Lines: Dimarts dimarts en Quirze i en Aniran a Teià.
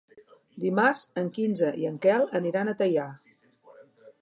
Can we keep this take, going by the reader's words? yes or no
no